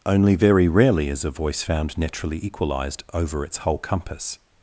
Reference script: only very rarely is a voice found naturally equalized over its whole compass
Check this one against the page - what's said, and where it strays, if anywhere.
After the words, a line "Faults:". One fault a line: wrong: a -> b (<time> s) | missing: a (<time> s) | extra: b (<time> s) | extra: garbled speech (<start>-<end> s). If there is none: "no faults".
only very rarely is a voice found naturally equalized over its whole compass
Faults:
no faults